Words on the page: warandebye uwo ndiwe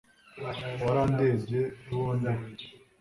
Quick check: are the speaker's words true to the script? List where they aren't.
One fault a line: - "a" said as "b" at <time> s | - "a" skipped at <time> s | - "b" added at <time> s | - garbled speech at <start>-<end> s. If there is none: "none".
none